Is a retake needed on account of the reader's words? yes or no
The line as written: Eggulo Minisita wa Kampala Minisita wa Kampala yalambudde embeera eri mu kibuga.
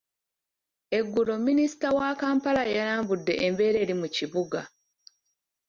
yes